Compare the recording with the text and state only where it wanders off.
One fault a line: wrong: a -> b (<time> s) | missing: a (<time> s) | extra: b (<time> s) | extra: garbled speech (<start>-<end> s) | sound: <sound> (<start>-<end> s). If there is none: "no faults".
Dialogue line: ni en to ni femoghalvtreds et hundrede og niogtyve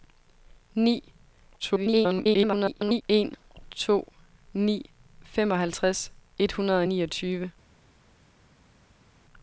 extra: garbled speech (1.6-3.0 s)